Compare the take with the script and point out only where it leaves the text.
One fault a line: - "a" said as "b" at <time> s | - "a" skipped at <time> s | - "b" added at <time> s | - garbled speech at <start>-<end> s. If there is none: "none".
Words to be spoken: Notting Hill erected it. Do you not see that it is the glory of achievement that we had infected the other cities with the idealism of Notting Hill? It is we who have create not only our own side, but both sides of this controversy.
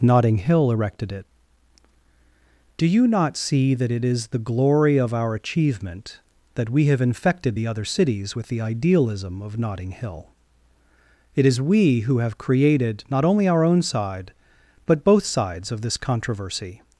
- "our" added at 5.1 s
- "had" said as "have" at 6.9 s
- "create" said as "created" at 12.4 s